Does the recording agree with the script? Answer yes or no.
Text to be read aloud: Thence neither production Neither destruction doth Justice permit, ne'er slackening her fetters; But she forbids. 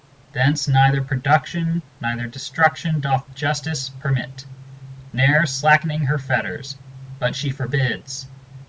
yes